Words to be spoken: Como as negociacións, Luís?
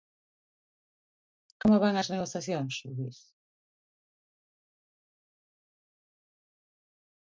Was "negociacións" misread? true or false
false